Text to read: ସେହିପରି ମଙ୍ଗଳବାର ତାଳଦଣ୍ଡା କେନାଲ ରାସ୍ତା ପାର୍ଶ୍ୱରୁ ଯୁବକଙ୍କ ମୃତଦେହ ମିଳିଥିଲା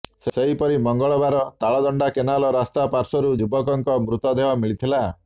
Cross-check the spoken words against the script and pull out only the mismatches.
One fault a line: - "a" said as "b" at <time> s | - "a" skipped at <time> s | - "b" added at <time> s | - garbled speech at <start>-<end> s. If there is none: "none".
none